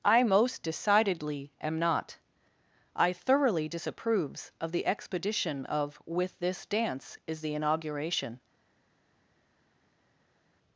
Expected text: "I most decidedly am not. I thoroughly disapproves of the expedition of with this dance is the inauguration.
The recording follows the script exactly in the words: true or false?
true